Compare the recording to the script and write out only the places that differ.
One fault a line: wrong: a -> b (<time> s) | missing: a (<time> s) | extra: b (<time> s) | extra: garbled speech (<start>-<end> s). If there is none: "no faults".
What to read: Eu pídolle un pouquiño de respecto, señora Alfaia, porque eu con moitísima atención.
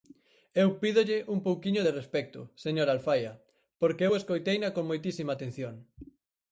extra: escoiteina (4.2 s)